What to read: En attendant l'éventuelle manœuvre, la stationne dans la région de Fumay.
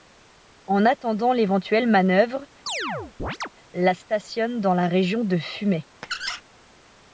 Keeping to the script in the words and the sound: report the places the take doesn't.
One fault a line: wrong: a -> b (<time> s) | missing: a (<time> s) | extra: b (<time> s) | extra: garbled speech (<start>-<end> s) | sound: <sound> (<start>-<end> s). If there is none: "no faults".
sound: chirp (2.7-3.5 s)
sound: squeak (6.0-6.4 s)